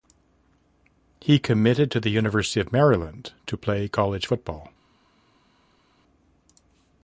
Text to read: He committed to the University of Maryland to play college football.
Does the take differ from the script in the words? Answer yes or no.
no